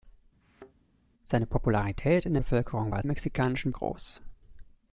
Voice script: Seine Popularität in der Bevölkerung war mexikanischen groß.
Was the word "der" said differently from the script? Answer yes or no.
no